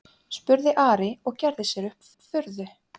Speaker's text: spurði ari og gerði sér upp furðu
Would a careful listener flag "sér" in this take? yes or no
no